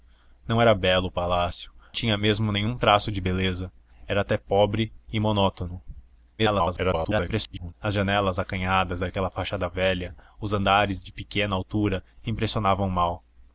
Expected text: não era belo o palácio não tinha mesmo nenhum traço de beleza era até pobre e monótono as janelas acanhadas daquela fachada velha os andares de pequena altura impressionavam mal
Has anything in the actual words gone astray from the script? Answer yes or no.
yes